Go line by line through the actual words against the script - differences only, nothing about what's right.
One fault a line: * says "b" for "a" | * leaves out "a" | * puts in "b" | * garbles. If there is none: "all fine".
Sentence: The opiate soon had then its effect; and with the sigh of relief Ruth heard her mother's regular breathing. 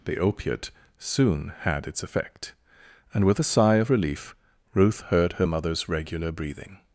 * leaves out "then"
* says "a" for "the"